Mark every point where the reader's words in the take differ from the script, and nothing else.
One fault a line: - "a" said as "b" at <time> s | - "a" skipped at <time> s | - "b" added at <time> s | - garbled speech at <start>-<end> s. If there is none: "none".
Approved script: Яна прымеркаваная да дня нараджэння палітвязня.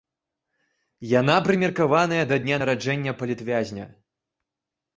none